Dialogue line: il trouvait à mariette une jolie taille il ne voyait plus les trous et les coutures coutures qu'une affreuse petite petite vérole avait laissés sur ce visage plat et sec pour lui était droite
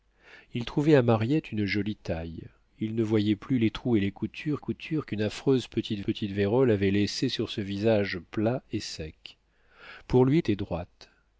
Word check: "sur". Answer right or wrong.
right